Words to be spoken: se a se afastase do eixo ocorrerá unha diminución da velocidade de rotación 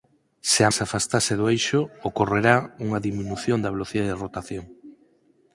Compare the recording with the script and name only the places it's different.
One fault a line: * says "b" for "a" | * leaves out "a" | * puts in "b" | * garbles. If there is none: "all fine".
all fine